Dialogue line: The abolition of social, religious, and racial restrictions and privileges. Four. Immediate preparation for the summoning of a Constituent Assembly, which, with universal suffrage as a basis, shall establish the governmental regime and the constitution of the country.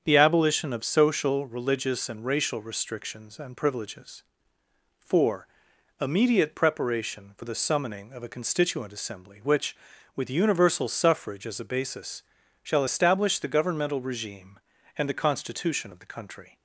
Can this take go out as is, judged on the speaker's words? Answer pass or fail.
pass